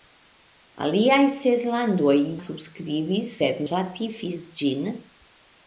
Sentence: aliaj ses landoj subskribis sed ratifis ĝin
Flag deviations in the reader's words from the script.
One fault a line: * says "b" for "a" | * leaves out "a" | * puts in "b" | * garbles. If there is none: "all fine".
all fine